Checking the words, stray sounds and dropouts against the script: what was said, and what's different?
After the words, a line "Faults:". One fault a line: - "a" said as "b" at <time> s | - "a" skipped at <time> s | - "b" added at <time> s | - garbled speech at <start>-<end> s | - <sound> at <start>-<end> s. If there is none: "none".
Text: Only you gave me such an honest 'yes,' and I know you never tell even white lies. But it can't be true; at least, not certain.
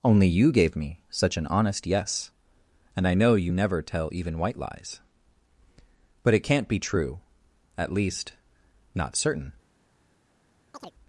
Only you gave me such an honest 'yes,' and I know you never tell even white lies. But it can't be true; at least, not certain.
Faults:
- chirp at 10.7-10.9 s